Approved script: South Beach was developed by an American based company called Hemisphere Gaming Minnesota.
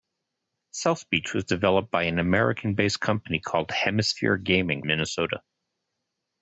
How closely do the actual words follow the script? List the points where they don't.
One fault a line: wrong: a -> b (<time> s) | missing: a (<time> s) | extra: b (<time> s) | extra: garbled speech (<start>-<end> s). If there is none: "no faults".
no faults